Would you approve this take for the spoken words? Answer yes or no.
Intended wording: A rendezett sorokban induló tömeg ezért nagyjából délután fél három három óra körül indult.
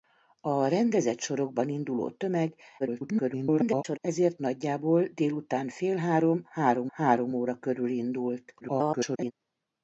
no